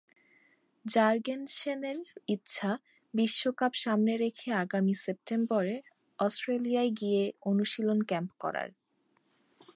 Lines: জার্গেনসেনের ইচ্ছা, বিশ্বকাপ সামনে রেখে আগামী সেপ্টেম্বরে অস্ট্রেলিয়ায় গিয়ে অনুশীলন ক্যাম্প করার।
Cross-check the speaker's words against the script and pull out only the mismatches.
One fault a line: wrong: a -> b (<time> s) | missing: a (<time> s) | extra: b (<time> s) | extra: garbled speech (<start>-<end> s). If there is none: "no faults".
no faults